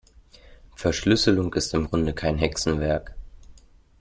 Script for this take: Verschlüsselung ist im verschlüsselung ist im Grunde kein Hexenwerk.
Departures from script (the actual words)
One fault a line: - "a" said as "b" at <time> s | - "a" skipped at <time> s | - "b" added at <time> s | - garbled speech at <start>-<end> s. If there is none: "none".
- "verschlüsselung ist im" skipped at 1.9 s